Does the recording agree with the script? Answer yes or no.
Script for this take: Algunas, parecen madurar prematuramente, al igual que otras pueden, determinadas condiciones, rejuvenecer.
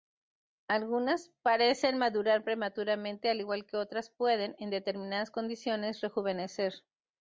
no